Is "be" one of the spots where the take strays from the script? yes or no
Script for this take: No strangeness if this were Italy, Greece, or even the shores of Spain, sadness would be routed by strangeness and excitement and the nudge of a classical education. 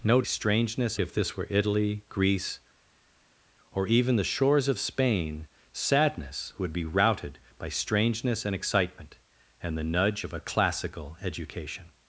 no